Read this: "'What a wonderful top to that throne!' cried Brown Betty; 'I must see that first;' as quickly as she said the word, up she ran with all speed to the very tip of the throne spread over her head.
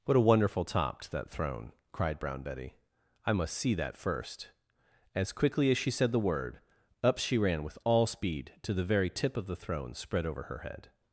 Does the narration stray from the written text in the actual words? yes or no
no